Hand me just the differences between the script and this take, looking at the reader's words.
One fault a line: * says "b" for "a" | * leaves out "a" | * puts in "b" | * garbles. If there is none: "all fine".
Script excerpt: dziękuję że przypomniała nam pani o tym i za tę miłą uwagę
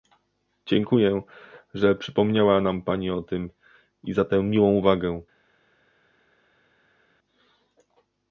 all fine